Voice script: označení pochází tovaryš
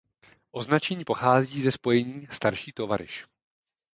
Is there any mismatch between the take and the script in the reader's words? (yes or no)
yes